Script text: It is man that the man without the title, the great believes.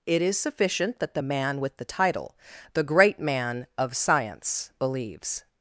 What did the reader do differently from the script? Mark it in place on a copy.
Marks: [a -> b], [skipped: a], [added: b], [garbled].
It is [man -> sufficient] that the man [without -> with] the title, the great [added: man of science] believes.